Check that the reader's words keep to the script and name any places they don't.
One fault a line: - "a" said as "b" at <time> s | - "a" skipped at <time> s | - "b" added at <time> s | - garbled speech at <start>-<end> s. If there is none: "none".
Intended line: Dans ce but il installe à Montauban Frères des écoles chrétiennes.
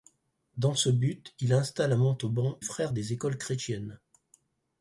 none